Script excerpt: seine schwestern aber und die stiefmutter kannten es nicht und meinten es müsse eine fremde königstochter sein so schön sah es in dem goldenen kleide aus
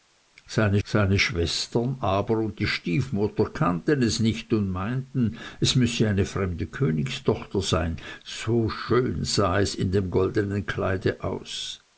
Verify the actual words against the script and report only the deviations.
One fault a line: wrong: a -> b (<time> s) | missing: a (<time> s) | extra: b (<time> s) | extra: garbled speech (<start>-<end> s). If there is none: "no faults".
extra: seine (0.8 s)